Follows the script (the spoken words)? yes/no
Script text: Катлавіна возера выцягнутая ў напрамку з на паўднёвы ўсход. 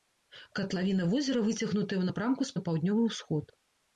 yes